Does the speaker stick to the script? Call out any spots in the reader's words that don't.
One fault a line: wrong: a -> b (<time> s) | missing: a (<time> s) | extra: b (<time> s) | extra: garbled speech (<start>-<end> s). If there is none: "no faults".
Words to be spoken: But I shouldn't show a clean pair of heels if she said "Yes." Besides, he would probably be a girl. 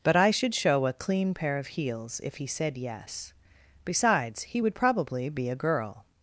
wrong: shouldn't -> should (0.3 s)
wrong: she -> he (2.4 s)